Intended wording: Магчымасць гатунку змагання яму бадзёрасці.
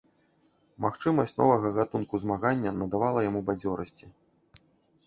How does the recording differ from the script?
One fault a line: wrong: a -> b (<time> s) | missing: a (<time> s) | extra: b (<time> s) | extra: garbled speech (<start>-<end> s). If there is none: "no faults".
extra: новага (1.4 s)
extra: надавала (2.8 s)